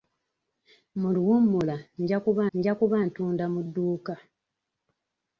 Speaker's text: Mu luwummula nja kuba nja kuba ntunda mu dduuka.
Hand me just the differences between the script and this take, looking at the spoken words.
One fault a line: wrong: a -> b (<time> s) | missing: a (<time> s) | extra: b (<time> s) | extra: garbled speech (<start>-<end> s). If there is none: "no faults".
no faults